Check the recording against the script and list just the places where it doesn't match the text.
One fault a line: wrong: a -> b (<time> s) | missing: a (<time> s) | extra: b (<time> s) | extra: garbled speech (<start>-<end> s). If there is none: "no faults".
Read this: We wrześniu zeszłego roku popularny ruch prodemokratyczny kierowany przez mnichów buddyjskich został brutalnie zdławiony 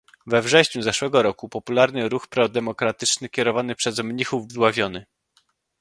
missing: buddyjskich został brutalnie (4.5 s)